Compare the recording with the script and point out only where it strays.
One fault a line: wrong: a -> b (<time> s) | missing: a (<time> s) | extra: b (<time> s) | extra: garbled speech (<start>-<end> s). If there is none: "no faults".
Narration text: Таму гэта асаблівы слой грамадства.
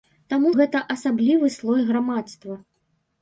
no faults